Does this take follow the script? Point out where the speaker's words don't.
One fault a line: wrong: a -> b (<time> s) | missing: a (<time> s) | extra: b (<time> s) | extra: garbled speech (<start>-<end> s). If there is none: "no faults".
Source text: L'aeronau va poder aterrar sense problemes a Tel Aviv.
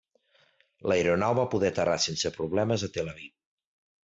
no faults